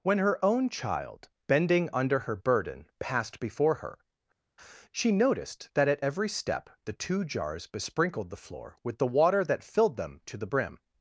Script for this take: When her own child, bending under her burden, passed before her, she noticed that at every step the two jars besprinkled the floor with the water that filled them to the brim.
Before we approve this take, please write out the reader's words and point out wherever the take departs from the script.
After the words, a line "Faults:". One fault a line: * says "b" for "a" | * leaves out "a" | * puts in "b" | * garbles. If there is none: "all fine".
When her own child, bending under her burden, passed before her, she noticed that at every step the two jars besprinkled the floor with the water that filled them to the brim.
Faults:
all fine